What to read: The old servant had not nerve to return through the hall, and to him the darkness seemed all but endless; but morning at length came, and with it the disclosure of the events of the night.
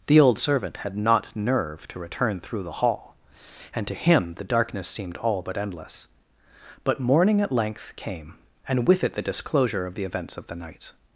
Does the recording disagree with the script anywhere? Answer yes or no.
no